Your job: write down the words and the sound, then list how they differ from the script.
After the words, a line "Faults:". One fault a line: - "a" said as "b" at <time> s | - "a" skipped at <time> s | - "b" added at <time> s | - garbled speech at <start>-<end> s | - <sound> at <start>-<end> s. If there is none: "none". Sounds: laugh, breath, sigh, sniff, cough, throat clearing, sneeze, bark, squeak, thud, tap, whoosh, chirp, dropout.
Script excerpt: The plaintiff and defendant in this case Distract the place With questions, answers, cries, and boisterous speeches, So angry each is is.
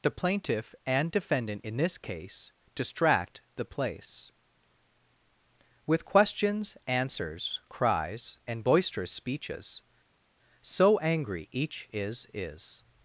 The plaintiff and defendant in this case Distract the place With questions, answers, cries, and boisterous speeches, So angry each is is.
Faults:
none